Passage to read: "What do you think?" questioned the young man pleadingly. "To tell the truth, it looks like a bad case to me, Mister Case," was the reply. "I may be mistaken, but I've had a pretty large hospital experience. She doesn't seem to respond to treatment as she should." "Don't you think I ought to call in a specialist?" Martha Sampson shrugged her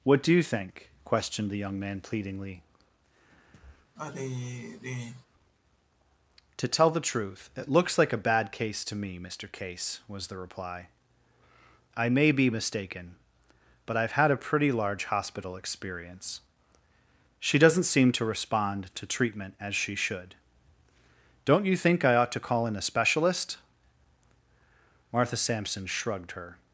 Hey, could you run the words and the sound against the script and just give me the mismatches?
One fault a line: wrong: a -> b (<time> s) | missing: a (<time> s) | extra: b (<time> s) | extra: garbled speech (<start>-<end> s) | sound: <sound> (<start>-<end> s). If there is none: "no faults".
sound: sigh (4.0-5.3 s)